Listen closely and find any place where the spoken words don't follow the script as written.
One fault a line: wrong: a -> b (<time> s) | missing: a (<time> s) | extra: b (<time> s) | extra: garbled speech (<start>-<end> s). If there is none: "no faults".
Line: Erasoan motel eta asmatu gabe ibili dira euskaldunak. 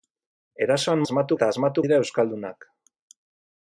wrong: motel -> asmatu (1.1 s)
missing: gabe ibili (1.8 s)